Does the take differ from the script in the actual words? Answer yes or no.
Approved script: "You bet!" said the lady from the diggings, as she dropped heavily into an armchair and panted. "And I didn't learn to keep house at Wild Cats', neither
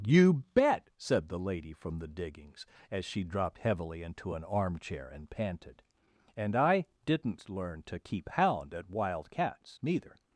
yes